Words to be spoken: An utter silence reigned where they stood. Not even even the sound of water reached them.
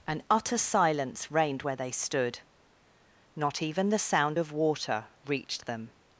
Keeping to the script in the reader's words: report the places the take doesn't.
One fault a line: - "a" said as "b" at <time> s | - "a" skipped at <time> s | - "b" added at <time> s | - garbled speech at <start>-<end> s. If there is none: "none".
- "even" skipped at 3.9 s